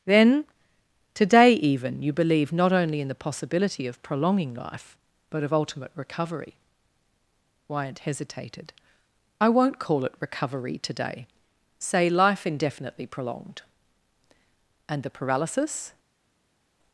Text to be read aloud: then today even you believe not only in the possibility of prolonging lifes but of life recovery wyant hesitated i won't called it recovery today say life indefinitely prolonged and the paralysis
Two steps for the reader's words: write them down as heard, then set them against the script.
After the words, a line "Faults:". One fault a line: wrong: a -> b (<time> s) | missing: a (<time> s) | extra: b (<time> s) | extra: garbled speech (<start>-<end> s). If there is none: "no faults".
then today even you believe not only in the possibility of prolonging life but of ultimate recovery wyant hesitated i won't call it recovery today say life indefinitely prolonged and the paralysis
Faults:
wrong: lifes -> life (4.5 s)
wrong: life -> ultimate (5.5 s)
wrong: called -> call (9.8 s)